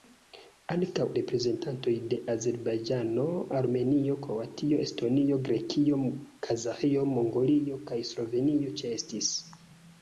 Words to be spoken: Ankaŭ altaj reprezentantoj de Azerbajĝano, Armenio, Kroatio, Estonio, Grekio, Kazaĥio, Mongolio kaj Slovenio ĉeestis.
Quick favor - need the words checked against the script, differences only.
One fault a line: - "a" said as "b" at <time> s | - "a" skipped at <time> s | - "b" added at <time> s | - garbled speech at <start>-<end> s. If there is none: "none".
- "altaj" skipped at 1.0 s